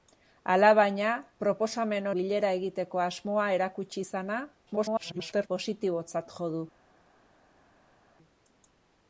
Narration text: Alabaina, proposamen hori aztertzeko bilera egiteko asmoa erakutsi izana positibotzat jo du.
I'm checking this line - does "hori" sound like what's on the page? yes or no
no